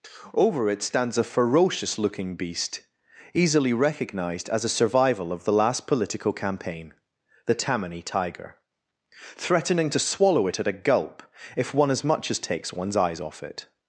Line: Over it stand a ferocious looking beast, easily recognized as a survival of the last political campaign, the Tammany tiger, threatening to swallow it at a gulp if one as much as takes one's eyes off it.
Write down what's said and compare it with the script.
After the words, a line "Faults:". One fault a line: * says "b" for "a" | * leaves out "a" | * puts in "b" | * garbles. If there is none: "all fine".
Over it stands a ferocious looking beast, easily recognized as a survival of the last political campaign, the Tammany tiger, threatening to swallow it at a gulp if one as much as takes one's eyes off it.
Faults:
* says "stands" for "stand"